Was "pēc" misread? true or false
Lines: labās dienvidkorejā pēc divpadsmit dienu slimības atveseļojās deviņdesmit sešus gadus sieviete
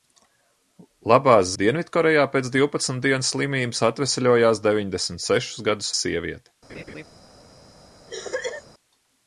false